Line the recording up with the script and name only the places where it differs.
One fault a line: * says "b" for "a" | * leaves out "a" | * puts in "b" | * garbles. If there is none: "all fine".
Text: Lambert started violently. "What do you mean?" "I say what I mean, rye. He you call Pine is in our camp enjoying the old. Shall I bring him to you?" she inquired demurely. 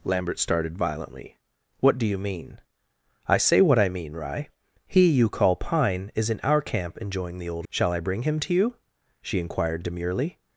all fine